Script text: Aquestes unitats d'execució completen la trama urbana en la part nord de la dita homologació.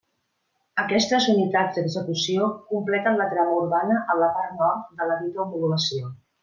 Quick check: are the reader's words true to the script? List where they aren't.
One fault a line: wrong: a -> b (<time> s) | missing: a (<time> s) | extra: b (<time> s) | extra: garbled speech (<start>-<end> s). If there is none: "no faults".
no faults